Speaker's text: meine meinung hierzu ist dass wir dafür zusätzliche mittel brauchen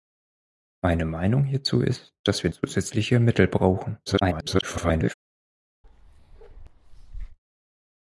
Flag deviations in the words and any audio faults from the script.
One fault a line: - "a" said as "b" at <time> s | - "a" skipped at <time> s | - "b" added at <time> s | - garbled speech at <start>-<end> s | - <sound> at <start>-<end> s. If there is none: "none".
- "dafür" skipped at 2.5 s
- garbled speech at 4.1-5.1 s
- bark at 5.8-7.4 s